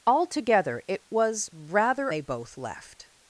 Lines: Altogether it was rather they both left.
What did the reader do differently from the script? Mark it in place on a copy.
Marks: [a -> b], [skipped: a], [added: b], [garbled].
Altogether it was rather they both left.